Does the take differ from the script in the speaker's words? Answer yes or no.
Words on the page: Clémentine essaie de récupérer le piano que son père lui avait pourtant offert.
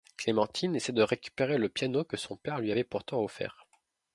no